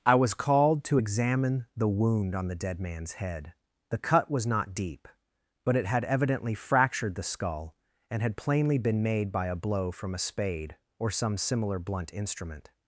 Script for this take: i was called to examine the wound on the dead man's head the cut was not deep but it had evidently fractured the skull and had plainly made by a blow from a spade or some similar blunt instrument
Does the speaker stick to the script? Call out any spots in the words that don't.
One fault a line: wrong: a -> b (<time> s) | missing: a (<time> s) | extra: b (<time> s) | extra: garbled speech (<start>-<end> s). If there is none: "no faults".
extra: been (8.8 s)